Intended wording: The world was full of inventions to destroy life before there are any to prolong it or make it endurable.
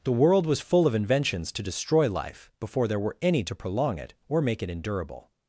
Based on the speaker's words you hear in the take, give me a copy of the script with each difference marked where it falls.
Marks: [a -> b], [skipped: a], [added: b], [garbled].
The world was full of inventions to destroy life before there [are -> were] any to prolong it or make it endurable.